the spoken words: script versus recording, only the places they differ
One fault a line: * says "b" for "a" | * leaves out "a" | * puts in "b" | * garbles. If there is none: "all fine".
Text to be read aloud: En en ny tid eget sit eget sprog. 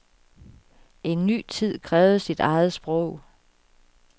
* leaves out "en"
* says "krævede" for "eget"